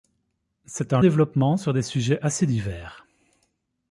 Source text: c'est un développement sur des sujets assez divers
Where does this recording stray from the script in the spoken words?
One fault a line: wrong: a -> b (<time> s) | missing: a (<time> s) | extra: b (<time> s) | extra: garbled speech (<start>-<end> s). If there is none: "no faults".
no faults